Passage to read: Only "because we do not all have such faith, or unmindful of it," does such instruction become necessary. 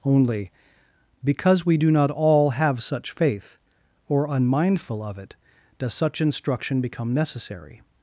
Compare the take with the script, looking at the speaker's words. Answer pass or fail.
pass